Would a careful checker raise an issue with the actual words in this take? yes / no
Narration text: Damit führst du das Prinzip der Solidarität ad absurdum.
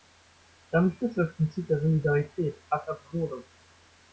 no